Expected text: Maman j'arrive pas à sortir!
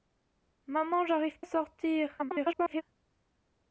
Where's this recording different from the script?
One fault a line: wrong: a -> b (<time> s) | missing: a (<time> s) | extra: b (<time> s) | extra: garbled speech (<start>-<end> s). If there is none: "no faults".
missing: pas (1.4 s)
extra: garbled speech (2.2-2.8 s)